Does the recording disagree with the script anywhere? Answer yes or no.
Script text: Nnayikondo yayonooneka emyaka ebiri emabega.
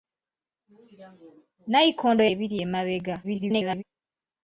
yes